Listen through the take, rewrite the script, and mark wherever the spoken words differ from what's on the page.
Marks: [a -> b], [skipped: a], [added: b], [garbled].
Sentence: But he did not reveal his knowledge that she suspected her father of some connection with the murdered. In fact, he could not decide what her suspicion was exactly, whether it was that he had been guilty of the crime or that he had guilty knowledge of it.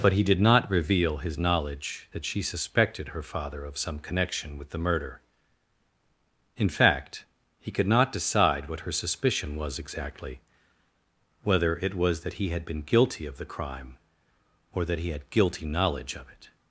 But he did not reveal his knowledge that she suspected her father of some connection with the [murdered. -> murder] In fact, he could not decide what her suspicion was exactly, whether it was that he had been guilty of the crime or that he had guilty knowledge of it.